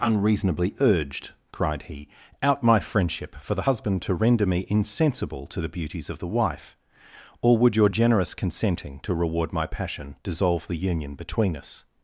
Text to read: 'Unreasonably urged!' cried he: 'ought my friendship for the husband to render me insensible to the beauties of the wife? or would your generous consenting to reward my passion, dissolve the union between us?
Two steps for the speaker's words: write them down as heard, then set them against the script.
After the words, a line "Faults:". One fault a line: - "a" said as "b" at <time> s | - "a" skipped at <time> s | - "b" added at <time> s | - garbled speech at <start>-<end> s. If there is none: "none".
'Unreasonably urged!' cried he: 'out my friendship for the husband to render me insensible to the beauties of the wife? or would your generous consenting to reward my passion, dissolve the union between us?
Faults:
- "ought" said as "out" at 2.4 s